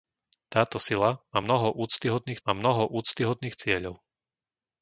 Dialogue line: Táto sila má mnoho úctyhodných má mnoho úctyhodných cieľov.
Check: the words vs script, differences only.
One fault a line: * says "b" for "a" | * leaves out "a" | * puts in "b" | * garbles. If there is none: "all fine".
all fine